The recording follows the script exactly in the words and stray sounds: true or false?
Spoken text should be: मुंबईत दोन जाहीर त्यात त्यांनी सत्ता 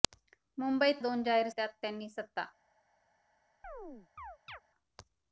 false